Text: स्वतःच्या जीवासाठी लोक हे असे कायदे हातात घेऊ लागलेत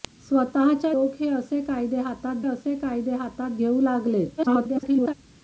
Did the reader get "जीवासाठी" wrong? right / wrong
wrong